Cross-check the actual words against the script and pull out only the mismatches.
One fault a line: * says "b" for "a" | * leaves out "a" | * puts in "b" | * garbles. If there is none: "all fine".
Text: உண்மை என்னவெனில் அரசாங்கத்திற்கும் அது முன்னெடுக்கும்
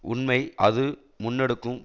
* leaves out "என்னவெனில் அரசாங்கத்திற்கும்"